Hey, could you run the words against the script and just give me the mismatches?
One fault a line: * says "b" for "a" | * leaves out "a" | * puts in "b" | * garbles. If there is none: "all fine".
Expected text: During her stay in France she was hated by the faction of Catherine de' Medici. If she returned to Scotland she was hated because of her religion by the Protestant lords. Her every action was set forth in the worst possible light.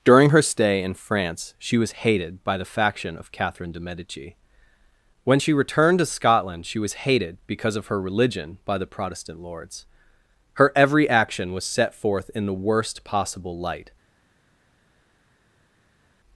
* says "When" for "If"